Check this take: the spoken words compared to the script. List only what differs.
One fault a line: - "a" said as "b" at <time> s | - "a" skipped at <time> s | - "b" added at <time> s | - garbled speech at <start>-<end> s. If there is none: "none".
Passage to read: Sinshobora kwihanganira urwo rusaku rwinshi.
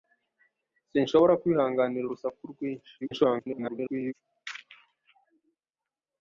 - "urwo" skipped at 2.0 s
- garbled speech at 3.0-4.1 s